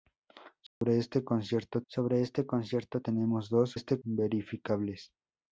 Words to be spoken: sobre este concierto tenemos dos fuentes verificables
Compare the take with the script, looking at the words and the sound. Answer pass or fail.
fail